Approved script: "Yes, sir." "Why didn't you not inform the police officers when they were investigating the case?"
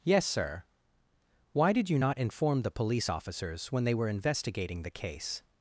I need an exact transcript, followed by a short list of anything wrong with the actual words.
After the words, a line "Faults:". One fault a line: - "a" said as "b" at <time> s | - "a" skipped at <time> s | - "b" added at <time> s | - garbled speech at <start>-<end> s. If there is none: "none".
"Yes, sir." "Why did you not inform the police officers when they were investigating the case?"
Faults:
- "didn't" said as "did" at 1.7 s